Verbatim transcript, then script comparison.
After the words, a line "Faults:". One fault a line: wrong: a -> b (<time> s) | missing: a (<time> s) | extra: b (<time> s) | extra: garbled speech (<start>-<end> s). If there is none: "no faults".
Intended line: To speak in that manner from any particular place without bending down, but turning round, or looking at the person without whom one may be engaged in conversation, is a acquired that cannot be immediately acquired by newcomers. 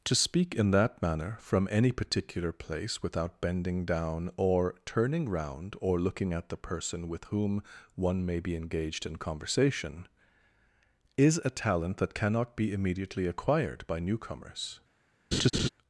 To speak in that manner from any particular place without bending down, or turning round, or looking at the person with whom one may be engaged in conversation, is a talent that cannot be immediately acquired by newcomers.
Faults:
wrong: but -> or (4.4 s)
wrong: without -> with (7.1 s)
wrong: acquired -> talent (11.5 s)